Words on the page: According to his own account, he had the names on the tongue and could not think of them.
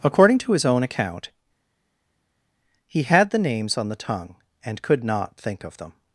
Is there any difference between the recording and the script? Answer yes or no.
no